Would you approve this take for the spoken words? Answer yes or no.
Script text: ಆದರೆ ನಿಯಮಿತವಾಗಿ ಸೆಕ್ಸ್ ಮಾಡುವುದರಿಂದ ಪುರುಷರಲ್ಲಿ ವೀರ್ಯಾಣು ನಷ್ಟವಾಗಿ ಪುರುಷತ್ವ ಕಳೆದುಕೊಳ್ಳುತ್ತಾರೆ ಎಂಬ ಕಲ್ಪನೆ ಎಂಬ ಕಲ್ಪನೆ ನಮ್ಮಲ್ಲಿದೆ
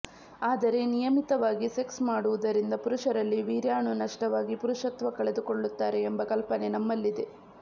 no